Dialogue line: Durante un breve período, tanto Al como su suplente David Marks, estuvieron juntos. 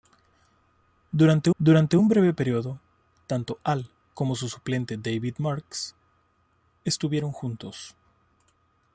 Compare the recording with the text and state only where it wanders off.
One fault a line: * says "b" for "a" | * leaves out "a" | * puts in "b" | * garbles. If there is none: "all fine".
* puts in "durante"